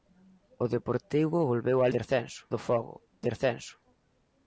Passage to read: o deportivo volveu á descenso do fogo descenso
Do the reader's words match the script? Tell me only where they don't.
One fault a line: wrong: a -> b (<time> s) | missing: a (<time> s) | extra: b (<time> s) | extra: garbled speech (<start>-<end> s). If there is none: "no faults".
no faults